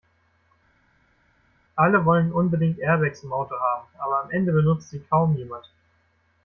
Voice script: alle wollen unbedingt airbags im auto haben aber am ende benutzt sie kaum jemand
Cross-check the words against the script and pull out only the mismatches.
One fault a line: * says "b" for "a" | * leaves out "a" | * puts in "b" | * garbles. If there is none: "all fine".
all fine